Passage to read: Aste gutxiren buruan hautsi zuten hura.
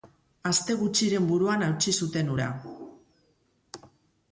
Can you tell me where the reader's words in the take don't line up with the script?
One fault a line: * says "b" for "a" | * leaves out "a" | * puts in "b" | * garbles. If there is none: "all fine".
all fine